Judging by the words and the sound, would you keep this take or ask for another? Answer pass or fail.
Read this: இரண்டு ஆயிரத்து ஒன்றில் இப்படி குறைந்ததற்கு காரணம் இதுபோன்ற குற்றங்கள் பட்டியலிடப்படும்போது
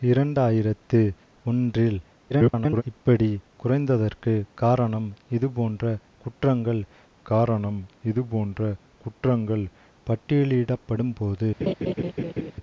fail